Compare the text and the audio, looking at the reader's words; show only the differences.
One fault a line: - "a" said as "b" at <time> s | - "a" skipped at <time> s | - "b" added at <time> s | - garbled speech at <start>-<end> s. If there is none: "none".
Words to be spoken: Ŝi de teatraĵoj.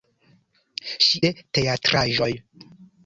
none